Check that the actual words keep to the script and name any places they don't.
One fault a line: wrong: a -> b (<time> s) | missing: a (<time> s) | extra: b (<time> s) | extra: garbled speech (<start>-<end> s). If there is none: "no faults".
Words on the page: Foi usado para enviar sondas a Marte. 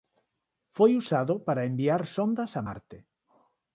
no faults